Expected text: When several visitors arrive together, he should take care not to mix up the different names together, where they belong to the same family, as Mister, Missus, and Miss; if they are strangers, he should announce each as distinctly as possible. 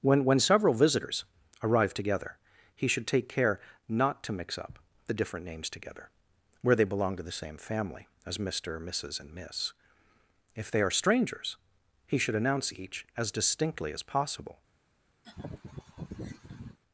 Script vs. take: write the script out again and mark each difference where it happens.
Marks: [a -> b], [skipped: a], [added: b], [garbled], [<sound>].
When [added: when] several visitors arrive together, he should take care not to mix up the different names together, where they belong to the same family, as Mister, Missus, and Miss; if they are strangers, he should announce each as distinctly as possible. [laugh]